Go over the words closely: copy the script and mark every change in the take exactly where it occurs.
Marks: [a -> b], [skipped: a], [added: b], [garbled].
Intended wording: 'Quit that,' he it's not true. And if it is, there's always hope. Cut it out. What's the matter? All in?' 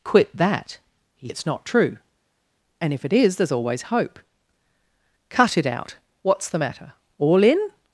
'Quit that,' he it's not true. And if it is, there's always hope. Cut it out. What's the matter? All in?'